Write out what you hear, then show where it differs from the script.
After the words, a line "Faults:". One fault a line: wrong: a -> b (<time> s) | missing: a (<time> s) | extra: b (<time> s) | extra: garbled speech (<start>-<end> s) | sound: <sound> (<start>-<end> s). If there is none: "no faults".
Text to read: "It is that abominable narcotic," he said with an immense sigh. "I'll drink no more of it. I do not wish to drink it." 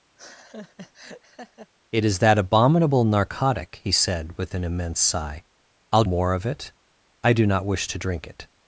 "It is that abominable narcotic," he said with an immense sigh. "I'll more of it. I do not wish to drink it."
Faults:
sound: laugh (0.2-1.7 s)
missing: drink no (6.0 s)